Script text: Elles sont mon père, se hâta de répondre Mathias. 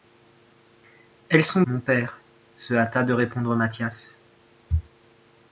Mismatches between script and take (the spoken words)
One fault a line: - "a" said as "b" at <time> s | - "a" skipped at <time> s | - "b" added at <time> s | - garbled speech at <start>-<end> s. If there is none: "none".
none